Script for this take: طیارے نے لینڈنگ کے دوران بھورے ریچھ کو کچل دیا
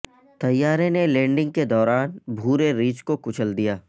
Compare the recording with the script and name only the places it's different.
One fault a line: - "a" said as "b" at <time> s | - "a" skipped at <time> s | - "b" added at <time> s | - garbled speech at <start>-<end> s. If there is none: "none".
none